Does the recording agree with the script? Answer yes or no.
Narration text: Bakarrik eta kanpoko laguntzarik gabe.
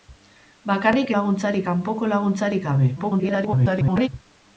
no